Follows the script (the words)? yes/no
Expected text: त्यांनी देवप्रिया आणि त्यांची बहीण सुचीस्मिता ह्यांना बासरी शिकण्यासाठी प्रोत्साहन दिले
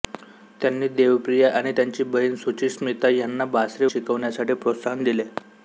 yes